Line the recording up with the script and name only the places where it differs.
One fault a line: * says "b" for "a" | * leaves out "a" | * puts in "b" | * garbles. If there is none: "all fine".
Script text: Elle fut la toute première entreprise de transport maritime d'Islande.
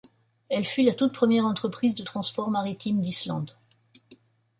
all fine